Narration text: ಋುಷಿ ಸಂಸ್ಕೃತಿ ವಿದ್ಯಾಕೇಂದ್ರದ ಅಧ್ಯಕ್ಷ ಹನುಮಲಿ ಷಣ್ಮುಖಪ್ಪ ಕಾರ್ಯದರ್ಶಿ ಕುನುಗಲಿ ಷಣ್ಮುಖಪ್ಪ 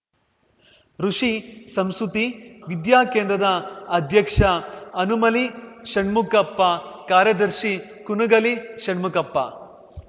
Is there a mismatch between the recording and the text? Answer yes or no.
no